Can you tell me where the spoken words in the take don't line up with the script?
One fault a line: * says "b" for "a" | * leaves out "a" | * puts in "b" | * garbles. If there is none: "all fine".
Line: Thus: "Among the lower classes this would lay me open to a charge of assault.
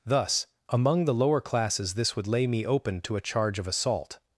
all fine